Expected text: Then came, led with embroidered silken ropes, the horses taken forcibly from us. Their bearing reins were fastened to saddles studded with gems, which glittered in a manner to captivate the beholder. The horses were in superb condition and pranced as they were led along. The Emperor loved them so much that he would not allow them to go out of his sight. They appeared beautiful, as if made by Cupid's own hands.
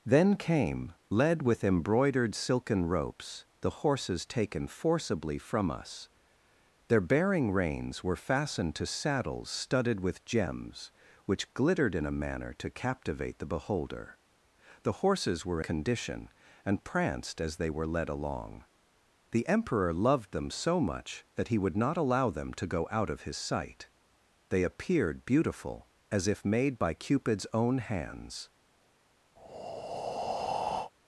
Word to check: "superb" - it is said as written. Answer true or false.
false